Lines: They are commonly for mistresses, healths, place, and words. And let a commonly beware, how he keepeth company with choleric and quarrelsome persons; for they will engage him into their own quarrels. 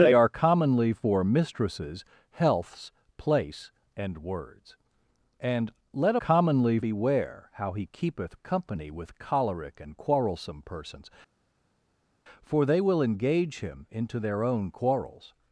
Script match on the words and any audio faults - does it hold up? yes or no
yes